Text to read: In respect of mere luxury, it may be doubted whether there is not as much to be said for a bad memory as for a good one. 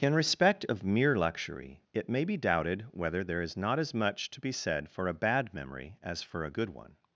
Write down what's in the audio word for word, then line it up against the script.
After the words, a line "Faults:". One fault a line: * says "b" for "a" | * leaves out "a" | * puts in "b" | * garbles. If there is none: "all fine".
In respect of mere luxury, it may be doubted whether there is not as much to be said for a bad memory as for a good one.
Faults:
all fine